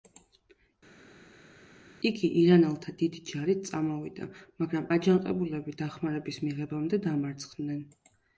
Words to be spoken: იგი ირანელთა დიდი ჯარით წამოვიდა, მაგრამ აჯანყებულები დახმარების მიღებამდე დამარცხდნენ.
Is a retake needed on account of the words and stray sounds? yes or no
no